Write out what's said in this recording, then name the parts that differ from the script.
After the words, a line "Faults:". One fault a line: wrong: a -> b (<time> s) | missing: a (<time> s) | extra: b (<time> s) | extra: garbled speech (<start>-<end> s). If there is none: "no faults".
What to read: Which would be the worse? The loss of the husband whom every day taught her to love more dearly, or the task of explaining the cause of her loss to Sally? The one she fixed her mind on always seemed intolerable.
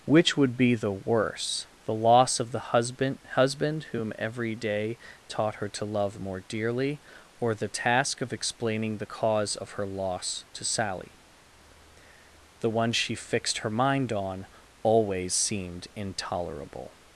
Which would be the worse? The loss of the husband husband whom every day taught her to love more dearly, or the task of explaining the cause of her loss to Sally? The one she fixed her mind on always seemed intolerable.
Faults:
extra: husband (3.4 s)